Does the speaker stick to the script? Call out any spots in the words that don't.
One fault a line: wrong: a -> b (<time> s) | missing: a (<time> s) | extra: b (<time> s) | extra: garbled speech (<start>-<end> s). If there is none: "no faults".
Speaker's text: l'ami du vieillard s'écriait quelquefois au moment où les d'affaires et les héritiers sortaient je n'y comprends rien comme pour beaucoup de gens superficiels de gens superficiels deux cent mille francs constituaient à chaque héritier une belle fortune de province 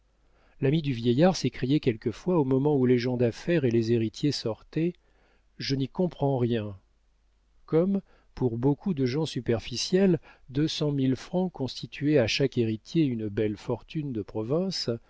extra: gens (3.0 s)
missing: de gens superficiels (10.2 s)